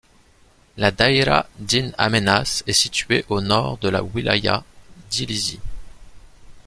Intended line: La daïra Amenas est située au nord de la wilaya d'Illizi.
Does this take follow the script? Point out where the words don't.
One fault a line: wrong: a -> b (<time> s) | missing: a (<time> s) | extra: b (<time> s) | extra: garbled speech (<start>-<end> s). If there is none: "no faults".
extra: d'In (1.6 s)